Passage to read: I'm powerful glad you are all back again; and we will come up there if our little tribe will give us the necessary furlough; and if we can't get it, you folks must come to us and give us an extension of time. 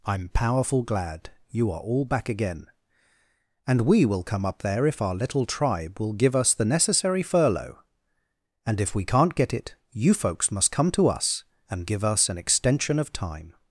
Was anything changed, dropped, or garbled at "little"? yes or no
no